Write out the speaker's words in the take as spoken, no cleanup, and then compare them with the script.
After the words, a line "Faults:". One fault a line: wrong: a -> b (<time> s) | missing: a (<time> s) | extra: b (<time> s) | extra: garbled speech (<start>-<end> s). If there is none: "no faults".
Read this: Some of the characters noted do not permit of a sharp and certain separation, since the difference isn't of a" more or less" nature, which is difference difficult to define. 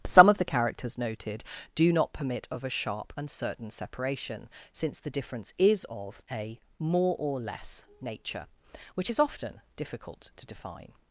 Some of the characters noted do not permit of a sharp and certain separation, since the difference is of a" more or less" nature, which is often difficult to define.
Faults:
wrong: isn't -> is (5.6 s)
wrong: difference -> often (9.2 s)